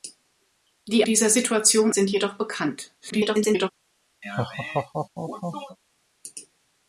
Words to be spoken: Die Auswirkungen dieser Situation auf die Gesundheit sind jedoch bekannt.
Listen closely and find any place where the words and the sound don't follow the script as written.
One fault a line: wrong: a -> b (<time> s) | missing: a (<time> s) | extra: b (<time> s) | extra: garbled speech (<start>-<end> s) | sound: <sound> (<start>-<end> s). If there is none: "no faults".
missing: Auswirkungen (1.1 s)
missing: auf die Gesundheit (1.9 s)
extra: garbled speech (3.0-3.7 s)
sound: laugh (4.2-5.8 s)